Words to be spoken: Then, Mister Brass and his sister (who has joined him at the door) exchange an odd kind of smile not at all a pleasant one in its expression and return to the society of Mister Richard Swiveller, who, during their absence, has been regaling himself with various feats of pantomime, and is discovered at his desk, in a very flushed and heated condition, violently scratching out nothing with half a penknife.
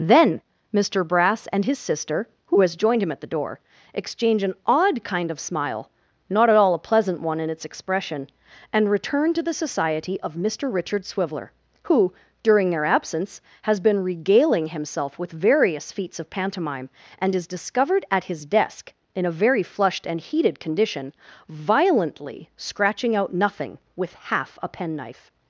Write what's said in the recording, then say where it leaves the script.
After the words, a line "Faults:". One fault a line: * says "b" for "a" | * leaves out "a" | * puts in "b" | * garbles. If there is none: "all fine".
Then, Mister Brass and his sister (who has joined him at the door) exchange an odd kind of smile not at all a pleasant one in its expression and return to the society of Mister Richard Swiveller, who, during their absence, has been regaling himself with various feats of pantomime, and is discovered at his desk, in a very flushed and heated condition, violently scratching out nothing with half a penknife.
Faults:
all fine